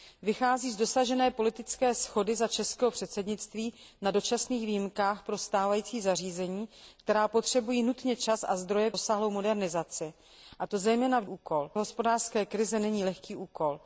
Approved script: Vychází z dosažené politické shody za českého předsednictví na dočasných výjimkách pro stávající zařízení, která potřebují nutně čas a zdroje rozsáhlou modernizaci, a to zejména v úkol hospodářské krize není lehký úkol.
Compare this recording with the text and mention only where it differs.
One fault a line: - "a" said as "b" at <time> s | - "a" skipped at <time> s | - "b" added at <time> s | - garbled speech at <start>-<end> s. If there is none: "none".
none